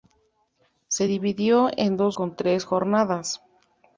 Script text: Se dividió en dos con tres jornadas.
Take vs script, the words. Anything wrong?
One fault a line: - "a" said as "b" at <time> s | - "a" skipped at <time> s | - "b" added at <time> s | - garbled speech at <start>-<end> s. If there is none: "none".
none